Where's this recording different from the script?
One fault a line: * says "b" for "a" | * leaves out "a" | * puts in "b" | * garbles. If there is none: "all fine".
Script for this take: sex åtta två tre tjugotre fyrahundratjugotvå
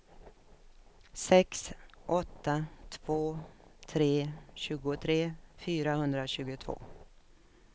all fine